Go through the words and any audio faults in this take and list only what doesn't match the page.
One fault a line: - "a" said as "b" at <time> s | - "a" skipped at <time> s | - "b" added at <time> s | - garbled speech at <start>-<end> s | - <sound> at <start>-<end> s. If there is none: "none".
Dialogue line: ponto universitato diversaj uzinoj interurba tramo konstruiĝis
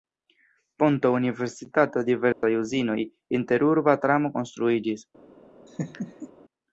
- dropout at 2.3-2.4 s
- laugh at 5.7-6.3 s